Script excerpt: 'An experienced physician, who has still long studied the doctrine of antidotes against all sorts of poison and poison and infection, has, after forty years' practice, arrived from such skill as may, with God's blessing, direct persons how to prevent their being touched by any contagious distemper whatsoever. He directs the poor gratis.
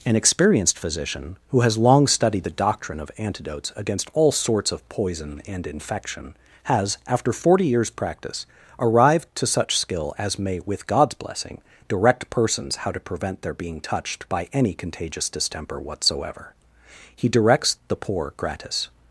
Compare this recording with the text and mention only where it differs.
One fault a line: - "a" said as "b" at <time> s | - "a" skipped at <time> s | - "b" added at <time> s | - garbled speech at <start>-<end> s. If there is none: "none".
- "still" skipped at 1.8 s
- "poison and" skipped at 5.7 s
- "from" said as "to" at 9.4 s